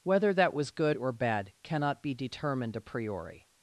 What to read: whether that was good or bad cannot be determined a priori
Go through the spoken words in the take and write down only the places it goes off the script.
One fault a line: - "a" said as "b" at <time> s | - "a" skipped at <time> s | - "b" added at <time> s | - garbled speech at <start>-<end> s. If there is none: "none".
none